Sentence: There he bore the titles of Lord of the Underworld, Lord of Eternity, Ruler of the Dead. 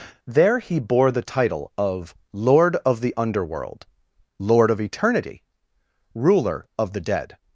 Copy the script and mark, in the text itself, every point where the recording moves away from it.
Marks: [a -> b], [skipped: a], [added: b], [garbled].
There he bore the [titles -> title] of Lord of the Underworld, Lord of Eternity, Ruler of the Dead.